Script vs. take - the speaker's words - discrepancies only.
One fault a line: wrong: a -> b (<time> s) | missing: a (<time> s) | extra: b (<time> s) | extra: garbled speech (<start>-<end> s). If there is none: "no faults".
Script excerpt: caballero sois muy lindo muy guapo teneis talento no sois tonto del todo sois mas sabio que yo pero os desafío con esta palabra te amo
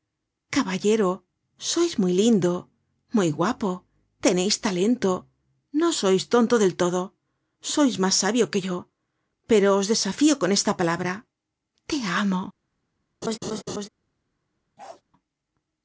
no faults